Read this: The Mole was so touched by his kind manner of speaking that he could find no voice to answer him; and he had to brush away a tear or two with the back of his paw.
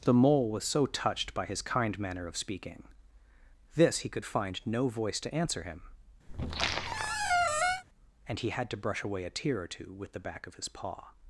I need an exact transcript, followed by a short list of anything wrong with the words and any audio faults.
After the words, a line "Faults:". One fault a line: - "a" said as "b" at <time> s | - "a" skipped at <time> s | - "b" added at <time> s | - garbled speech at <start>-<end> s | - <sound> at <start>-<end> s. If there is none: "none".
The Mole was so touched by his kind manner of speaking this he could find no voice to answer him; and he had to brush away a tear or two with the back of his paw.
Faults:
- "that" said as "this" at 3.8 s
- squeak at 6.3-7.8 s